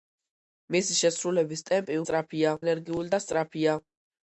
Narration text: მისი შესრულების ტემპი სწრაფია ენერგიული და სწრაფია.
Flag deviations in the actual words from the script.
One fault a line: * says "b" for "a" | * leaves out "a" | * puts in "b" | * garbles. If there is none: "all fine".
all fine